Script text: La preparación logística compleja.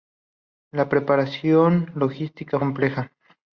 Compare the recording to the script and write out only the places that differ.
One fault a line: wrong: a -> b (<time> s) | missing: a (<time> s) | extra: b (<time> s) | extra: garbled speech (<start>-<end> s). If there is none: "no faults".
no faults